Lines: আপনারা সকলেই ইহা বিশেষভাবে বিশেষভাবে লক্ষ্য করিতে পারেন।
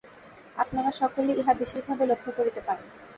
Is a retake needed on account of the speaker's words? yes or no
yes